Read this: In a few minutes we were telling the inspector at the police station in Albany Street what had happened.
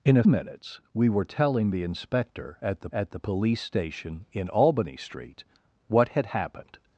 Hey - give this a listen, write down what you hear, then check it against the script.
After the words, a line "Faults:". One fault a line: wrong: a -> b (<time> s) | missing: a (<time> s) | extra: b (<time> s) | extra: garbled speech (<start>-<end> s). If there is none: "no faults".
In a minutes we were telling the inspector at the at the police station in Albany Street what had happened.
Faults:
missing: few (0.2 s)
extra: at the (2.9 s)